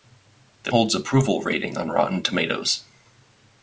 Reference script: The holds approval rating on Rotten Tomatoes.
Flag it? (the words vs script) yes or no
no